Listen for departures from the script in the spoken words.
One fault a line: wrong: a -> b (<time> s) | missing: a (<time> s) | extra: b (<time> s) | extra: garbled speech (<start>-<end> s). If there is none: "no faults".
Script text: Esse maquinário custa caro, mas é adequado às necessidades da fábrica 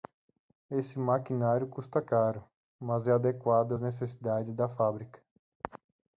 no faults